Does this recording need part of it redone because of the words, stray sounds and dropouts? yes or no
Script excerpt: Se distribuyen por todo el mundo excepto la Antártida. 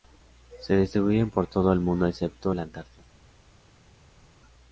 no